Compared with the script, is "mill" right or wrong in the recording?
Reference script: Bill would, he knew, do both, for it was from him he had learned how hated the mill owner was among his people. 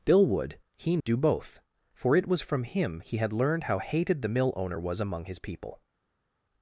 right